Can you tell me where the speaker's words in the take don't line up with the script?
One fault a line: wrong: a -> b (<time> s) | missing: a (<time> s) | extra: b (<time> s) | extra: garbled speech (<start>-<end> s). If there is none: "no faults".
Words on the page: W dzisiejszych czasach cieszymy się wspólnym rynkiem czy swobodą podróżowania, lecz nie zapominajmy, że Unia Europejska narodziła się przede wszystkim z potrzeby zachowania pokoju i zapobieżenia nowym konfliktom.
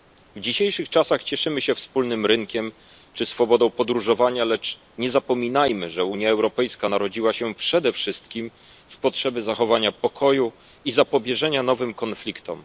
no faults